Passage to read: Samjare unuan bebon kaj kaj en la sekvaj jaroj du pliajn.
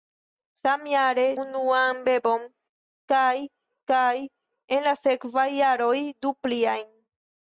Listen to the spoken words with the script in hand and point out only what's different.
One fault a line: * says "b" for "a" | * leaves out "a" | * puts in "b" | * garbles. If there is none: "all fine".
all fine